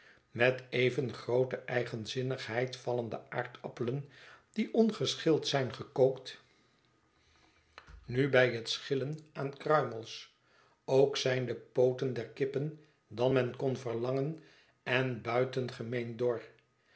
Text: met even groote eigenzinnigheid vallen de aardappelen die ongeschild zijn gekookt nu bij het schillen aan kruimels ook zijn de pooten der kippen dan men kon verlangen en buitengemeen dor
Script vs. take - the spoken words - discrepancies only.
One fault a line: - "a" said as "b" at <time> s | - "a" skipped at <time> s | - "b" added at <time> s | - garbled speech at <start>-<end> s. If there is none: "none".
none